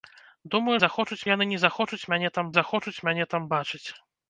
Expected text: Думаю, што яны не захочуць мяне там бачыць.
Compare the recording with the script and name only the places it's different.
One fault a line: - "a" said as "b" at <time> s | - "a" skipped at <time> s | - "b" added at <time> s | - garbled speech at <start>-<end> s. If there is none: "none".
- "што" said as "захочуць" at 0.8 s
- "захочуць мяне там" added at 2.6 s